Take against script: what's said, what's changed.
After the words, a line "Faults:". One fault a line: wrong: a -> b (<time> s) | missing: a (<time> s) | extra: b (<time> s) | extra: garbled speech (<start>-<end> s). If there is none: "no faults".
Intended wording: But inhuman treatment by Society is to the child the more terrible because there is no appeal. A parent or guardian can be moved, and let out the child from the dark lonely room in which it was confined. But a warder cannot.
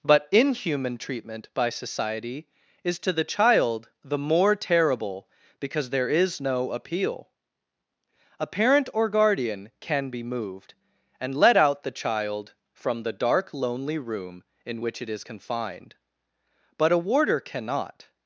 But inhuman treatment by Society is to the child the more terrible because there is no appeal. A parent or guardian can be moved, and let out the child from the dark lonely room in which it is confined. But a warder cannot.
Faults:
wrong: was -> is (15.1 s)